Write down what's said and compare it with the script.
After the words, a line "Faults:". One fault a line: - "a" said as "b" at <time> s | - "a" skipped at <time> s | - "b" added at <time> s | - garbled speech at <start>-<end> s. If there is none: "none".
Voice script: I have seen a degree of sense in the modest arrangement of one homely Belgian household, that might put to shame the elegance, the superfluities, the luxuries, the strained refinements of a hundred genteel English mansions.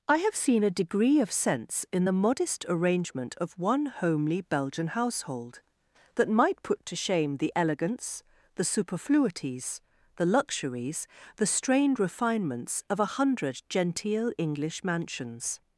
I have seen a degree of sense in the modest arrangement of one homely Belgian household, that might put to shame the elegance, the superfluities, the luxuries, the strained refinements of a hundred genteel English mansions.
Faults:
none